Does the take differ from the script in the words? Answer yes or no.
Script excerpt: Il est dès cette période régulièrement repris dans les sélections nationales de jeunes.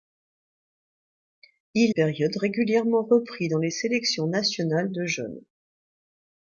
yes